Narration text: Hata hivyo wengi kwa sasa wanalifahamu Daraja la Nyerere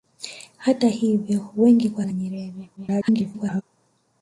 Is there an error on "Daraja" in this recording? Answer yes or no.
yes